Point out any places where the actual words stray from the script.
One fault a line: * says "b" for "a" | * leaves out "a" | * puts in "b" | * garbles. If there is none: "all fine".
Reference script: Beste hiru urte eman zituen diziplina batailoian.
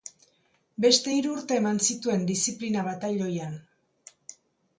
all fine